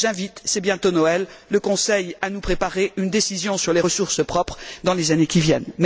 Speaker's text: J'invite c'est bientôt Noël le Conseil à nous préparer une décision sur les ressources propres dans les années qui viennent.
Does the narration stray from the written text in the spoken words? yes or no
no